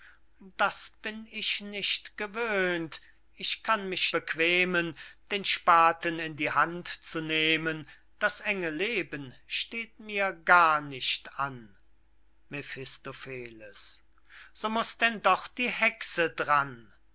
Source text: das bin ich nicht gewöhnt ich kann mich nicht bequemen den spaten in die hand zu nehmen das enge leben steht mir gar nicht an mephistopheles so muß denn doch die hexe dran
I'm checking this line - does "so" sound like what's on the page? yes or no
yes